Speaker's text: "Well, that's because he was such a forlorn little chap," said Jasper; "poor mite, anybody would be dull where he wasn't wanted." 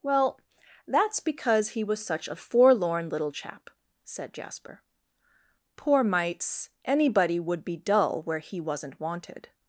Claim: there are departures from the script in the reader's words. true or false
true